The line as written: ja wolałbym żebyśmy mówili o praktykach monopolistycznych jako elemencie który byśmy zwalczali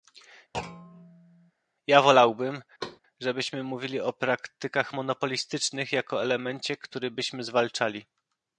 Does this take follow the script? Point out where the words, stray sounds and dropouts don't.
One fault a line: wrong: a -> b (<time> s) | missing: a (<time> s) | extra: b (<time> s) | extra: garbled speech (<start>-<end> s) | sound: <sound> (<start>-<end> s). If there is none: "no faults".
sound: thud (0.5-1.5 s)
sound: thud (2.8-3.0 s)